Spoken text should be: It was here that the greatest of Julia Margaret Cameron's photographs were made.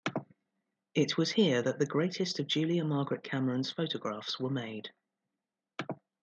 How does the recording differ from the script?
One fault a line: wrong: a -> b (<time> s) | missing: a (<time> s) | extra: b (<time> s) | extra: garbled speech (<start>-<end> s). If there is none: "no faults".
no faults